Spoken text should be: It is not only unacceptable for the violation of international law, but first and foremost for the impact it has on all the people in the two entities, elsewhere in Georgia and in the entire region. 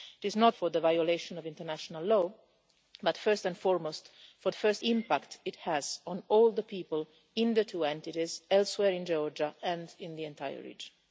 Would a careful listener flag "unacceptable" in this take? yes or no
yes